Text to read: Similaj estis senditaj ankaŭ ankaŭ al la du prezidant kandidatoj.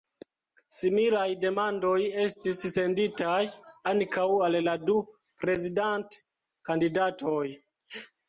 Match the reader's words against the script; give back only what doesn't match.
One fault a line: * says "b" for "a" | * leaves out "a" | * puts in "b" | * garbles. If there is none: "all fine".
* puts in "demandoj"
* leaves out "ankaŭ"